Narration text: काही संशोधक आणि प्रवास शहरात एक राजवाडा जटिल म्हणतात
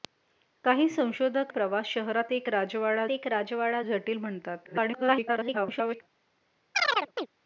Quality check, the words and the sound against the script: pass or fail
fail